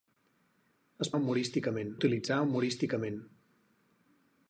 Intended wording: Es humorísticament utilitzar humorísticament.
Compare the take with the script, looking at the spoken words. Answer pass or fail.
pass